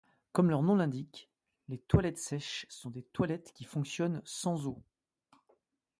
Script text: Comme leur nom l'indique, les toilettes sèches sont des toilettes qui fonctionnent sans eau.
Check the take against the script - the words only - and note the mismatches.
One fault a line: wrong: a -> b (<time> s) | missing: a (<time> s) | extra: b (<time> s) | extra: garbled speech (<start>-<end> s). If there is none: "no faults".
no faults